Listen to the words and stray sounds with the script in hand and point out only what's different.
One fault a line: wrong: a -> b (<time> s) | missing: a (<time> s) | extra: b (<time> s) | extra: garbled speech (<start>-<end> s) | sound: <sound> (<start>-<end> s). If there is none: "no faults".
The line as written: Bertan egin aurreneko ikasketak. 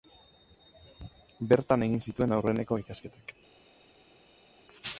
extra: zituen (2.1 s)